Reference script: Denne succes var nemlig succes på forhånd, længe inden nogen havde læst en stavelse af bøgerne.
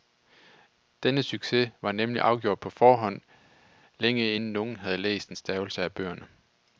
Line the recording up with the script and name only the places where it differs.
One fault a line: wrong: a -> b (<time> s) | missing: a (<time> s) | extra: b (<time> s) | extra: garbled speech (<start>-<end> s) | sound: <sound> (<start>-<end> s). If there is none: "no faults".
wrong: succes -> afgjort (2.2 s)